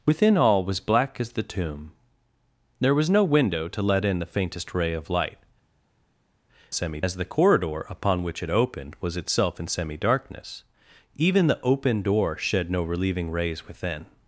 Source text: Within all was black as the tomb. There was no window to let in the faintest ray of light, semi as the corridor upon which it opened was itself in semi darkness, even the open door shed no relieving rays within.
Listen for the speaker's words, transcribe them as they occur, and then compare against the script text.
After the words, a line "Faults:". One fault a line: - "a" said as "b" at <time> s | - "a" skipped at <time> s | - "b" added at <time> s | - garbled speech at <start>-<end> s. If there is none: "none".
Within all was black as the tomb. There was no window to let in the faintest ray of light, semi as the corridor upon which it opened was itself in semi darkness, even the open door shed no relieving rays within.
Faults:
none